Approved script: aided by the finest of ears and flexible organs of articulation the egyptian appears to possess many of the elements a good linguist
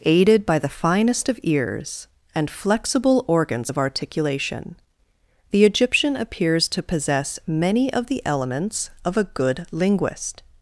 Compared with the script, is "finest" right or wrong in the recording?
right